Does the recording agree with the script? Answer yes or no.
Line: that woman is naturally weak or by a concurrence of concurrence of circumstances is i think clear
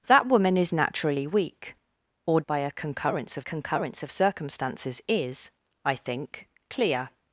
yes